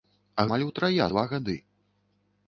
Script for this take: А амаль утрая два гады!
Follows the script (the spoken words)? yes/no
yes